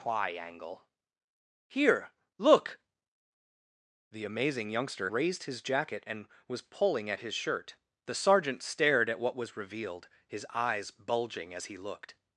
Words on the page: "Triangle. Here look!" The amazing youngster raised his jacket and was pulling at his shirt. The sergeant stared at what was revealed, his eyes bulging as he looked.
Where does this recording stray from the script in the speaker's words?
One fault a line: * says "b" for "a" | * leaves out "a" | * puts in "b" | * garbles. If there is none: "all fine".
all fine